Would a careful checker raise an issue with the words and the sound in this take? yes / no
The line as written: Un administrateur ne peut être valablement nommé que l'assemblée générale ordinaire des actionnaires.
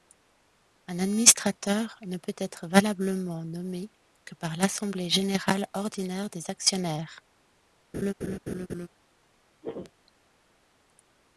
yes